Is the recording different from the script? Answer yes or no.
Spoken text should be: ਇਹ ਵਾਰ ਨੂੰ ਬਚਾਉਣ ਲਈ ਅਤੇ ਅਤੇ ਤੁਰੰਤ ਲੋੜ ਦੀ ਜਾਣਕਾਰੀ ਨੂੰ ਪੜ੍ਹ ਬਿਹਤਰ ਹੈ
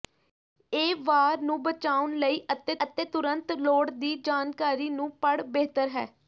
no